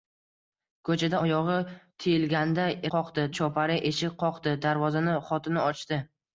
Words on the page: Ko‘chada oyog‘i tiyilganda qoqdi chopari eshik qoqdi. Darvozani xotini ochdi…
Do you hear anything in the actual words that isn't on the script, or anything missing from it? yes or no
no